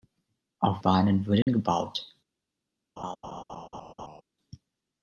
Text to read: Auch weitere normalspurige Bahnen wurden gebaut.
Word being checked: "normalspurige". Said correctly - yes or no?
no